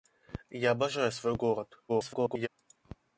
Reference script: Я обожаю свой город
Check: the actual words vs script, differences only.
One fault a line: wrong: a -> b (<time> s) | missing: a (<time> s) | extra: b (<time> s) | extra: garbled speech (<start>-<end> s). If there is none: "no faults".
extra: garbled speech (1.9-2.5 s)